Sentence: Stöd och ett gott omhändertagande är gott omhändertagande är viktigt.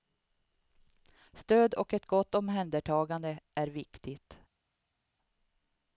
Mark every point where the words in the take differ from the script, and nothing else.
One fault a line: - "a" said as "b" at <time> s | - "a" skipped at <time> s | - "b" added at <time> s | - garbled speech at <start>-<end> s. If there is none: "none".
- "gott omhändertagande är" skipped at 3.7 s